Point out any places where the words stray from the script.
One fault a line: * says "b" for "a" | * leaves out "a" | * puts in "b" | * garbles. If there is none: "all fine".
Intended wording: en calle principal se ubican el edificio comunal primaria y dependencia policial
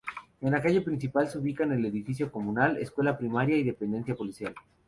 * puts in "la"
* puts in "escuela"